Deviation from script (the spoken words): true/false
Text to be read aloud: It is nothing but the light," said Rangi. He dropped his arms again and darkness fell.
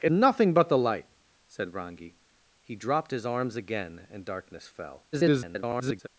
true